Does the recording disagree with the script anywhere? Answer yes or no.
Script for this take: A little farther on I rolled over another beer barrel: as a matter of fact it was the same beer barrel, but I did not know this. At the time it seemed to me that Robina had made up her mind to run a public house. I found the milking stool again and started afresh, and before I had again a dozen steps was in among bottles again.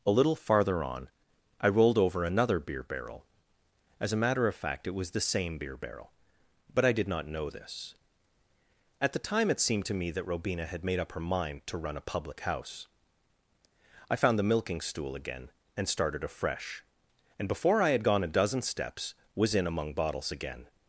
yes